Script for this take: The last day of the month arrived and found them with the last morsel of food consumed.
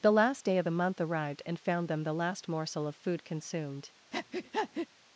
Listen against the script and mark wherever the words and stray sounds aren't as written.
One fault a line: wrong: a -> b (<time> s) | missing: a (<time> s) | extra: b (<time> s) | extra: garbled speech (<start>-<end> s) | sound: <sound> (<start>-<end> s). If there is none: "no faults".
missing: with (2.0 s)
sound: breath (4.1-4.9 s)